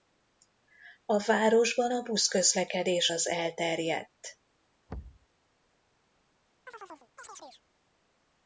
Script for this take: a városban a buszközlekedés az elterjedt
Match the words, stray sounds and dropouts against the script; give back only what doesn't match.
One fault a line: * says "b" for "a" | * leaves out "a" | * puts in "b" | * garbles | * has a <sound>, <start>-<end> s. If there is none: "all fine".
* has a thud, 4.9-5.3 s
* has a chirp, 6.7-7.6 s